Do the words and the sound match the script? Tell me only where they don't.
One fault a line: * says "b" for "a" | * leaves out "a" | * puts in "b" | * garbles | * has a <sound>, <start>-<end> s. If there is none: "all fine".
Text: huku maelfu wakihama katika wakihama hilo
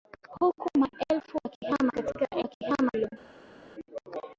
all fine